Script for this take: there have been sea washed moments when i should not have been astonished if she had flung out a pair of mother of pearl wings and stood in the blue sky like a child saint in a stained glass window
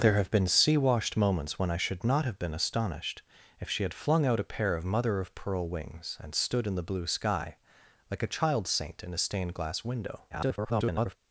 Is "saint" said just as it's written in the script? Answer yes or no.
yes